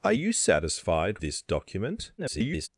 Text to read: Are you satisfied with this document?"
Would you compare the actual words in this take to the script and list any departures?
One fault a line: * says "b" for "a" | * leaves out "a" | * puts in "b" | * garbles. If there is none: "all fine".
* leaves out "with"
* garbles